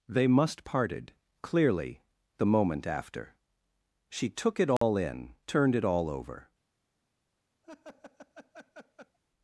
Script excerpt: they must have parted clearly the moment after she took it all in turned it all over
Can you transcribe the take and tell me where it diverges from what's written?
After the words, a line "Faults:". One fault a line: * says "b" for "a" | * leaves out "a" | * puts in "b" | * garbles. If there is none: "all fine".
they must parted clearly the moment after she took it all in turned it all over
Faults:
* leaves out "have"